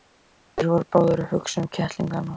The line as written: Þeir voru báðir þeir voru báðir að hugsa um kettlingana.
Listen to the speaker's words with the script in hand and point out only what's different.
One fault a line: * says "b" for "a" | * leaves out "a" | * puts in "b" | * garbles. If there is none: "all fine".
* leaves out "þeir voru báðir"